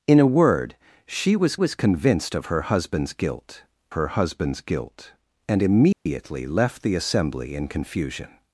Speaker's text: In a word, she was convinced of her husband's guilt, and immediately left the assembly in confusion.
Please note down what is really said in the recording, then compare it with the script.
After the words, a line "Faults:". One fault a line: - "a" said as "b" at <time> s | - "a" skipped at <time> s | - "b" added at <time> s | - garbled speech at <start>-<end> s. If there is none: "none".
In a word, she was was convinced of her husband's guilt her husband's guilt, and immediately left the assembly in confusion.
Faults:
- "was" added at 1.5 s
- "her husband's guilt" added at 3.9 s